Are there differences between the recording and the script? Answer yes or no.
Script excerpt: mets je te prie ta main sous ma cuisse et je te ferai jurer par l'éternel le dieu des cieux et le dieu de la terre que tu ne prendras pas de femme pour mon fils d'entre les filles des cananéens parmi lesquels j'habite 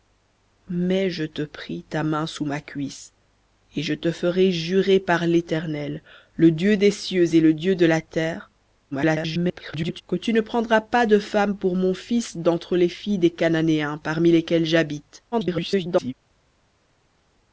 yes